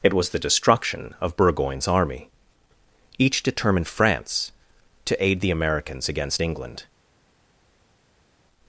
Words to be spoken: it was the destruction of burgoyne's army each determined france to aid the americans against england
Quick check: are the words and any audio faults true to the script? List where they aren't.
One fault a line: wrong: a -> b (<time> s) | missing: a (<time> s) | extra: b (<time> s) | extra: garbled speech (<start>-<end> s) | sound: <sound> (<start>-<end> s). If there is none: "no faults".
no faults